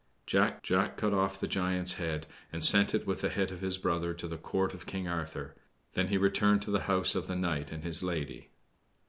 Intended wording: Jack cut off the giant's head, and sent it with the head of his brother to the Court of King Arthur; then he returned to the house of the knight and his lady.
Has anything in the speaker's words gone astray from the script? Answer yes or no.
yes